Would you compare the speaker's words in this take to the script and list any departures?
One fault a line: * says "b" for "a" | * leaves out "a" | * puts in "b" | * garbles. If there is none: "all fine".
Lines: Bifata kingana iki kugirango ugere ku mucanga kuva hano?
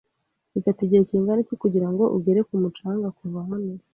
* puts in "igihe"